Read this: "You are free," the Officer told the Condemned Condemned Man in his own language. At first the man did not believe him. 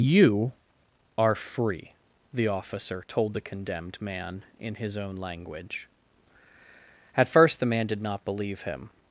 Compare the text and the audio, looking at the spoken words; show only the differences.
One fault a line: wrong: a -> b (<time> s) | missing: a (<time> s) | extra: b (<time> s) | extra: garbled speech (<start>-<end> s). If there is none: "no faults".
missing: Condemned (4.0 s)